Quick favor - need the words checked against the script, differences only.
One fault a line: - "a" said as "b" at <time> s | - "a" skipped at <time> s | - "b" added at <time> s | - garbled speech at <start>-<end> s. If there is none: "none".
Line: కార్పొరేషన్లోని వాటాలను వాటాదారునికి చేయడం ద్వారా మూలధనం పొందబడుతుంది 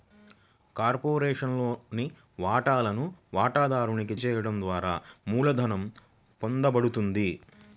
none